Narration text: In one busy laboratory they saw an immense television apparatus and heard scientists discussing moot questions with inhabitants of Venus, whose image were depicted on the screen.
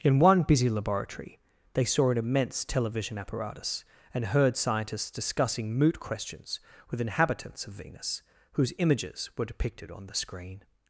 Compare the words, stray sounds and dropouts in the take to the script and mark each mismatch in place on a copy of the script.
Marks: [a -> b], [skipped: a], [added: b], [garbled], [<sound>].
In one busy laboratory they saw an immense television apparatus and heard scientists discussing moot questions with inhabitants of Venus, whose [image -> images] were depicted on the screen.